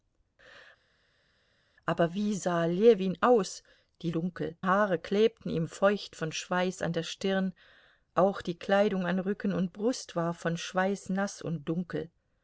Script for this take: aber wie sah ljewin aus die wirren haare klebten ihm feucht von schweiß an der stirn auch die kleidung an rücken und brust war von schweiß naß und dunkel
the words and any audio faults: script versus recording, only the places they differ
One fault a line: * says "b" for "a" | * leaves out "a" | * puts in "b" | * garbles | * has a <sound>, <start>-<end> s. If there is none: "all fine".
* says "dunkel" for "wirren"